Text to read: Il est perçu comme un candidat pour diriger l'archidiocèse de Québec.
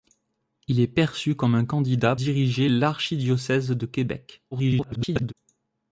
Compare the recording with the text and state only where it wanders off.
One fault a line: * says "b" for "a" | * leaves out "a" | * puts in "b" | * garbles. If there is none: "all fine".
* leaves out "pour"
* garbles